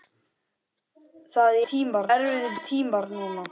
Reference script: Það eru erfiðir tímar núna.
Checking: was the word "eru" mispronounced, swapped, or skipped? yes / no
yes